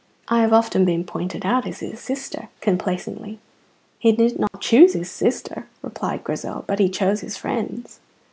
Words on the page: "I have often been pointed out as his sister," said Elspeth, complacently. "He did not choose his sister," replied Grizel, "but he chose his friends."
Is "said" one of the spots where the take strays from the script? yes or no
yes